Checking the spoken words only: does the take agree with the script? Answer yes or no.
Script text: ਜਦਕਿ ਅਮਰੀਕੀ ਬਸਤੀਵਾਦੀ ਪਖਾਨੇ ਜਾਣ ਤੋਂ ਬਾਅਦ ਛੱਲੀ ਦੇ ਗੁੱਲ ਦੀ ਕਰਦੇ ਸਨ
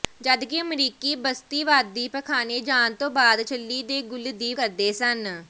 yes